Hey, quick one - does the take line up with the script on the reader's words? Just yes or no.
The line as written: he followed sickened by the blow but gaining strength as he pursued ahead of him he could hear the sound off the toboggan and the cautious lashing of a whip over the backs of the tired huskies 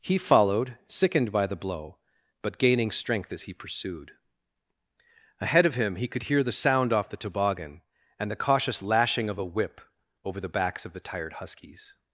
yes